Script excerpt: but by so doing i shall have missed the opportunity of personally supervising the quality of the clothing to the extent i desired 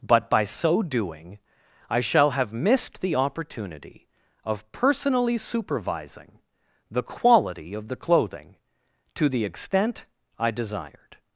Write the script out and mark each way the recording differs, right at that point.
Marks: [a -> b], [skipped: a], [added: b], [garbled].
but by so doing i shall have missed the opportunity of personally supervising the quality of the clothing to the extent i desired